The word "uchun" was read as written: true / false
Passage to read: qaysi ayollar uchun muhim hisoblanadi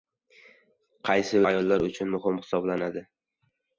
true